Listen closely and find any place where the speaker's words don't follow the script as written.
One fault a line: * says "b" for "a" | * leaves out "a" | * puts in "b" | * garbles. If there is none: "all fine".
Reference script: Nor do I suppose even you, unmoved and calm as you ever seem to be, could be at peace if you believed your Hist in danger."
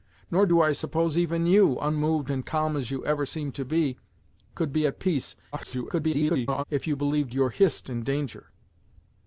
* garbles